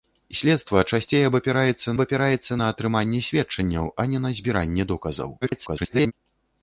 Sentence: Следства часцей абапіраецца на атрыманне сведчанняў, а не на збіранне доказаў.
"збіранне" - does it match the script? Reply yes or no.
yes